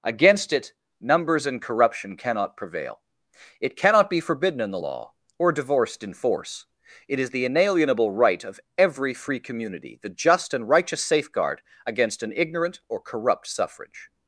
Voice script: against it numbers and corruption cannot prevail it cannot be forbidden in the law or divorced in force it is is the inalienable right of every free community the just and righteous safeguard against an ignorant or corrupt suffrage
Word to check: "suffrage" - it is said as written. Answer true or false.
true